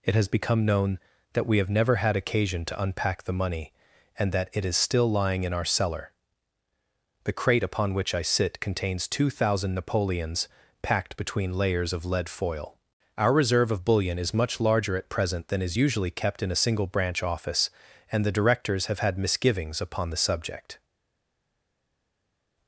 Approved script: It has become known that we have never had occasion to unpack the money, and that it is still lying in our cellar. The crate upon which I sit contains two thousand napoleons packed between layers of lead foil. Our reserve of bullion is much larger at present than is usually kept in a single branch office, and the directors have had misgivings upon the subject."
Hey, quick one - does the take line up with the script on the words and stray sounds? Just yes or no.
yes